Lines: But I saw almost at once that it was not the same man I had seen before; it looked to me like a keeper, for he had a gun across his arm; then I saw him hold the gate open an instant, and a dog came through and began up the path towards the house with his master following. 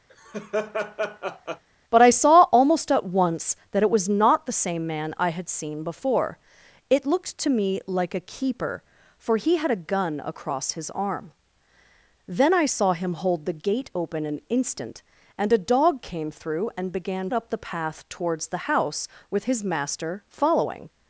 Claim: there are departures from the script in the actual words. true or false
false